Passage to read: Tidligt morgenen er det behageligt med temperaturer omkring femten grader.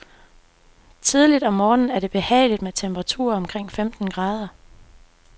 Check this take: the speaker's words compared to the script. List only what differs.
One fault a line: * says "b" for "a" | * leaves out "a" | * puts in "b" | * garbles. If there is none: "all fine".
* puts in "om"